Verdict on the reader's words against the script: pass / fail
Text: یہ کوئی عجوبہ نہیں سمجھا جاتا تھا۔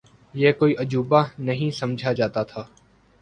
pass